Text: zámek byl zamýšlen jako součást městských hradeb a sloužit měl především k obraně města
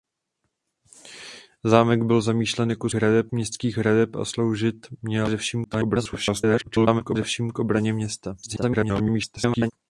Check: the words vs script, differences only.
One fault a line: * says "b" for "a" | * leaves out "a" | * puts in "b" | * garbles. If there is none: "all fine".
* says "hradeb" for "součást"
* garbles
* garbles